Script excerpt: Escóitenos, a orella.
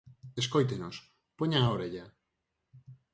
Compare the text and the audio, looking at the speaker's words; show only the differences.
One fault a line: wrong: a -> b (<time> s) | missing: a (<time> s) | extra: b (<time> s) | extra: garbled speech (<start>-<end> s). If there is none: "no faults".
extra: poñan (1.4 s)